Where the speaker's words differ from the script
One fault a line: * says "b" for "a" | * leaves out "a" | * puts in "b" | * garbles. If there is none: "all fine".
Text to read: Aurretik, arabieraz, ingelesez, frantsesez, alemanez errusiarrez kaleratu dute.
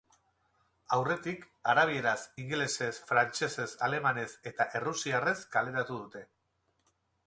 * puts in "eta"